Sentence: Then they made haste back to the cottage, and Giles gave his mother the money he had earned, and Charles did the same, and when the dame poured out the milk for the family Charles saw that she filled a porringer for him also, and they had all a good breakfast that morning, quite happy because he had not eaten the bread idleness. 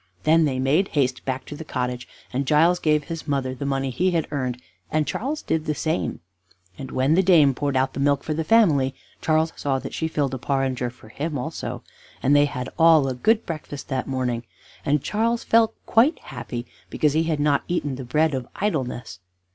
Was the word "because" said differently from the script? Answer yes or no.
no